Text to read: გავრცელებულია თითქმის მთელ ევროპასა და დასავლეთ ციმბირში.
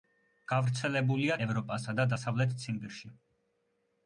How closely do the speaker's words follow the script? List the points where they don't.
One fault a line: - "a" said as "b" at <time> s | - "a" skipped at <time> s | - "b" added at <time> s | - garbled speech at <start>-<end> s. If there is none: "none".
- "თითქმის მთელ" skipped at 1.4 s